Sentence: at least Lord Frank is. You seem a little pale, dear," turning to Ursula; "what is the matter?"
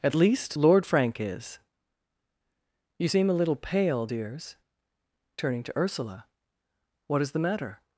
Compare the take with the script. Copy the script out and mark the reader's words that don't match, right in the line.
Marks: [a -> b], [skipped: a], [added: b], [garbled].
at least Lord Frank is. You seem a little pale, [dear," -> dears] turning to Ursula; "what is the matter?"